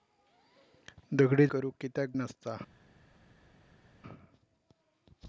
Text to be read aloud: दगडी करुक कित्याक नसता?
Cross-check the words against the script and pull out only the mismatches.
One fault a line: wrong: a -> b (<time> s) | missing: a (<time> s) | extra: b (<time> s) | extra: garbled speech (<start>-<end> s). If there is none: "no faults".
no faults